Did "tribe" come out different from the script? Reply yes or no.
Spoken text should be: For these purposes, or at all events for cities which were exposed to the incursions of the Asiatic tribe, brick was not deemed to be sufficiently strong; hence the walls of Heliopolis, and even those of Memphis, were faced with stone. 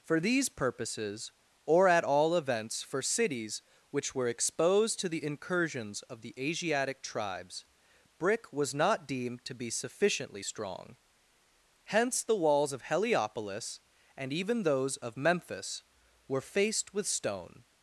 yes